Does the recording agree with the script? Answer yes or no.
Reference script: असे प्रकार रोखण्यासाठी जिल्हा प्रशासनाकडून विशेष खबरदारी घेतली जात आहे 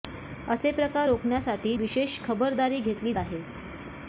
no